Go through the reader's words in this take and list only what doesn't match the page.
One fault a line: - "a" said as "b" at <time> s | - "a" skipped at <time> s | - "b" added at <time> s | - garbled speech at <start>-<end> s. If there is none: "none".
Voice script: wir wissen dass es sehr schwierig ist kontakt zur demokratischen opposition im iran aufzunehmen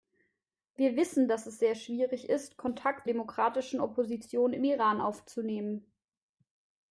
- "zur" skipped at 3.1 s